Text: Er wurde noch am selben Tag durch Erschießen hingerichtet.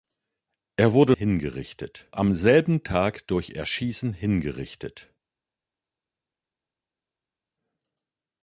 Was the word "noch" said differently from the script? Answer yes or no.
yes